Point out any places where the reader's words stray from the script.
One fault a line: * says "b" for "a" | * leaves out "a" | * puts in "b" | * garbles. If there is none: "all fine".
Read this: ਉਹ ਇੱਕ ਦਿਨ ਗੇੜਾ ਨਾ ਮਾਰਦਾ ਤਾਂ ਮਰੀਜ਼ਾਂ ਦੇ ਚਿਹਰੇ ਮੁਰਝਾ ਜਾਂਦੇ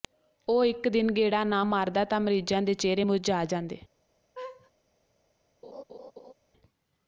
all fine